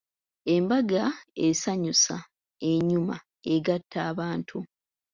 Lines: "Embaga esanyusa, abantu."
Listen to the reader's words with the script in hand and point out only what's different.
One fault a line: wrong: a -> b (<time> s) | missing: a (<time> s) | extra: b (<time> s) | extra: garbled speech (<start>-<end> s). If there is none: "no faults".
extra: enyuma egatta (2.7 s)